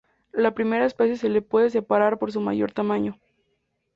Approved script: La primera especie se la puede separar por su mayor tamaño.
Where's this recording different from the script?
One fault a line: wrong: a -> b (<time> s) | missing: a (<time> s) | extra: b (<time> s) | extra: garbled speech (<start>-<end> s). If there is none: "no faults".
no faults